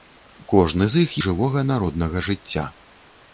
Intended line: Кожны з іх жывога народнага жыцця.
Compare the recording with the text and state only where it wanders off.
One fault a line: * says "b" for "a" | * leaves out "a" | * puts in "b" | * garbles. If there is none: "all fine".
all fine